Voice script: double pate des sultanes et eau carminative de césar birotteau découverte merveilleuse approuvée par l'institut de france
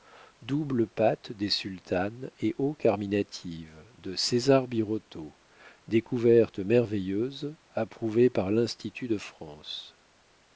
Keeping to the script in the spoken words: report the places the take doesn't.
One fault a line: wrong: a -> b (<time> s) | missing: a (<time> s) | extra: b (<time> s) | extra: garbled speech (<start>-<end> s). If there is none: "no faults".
no faults